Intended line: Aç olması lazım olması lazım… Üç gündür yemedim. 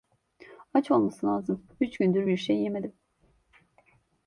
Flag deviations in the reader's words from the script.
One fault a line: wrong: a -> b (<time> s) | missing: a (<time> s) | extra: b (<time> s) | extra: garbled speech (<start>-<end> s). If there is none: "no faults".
wrong: olması lazım Üç gündür -> Üç gündür bir şey (1.8 s)